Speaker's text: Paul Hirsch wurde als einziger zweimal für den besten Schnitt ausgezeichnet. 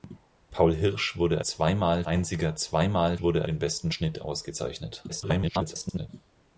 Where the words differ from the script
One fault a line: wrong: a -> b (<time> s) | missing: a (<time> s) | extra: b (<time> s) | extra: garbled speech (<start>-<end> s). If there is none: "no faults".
wrong: als -> zweimal (1.4 s)
wrong: für -> wurde (3.2 s)
extra: garbled speech (5.1-6.1 s)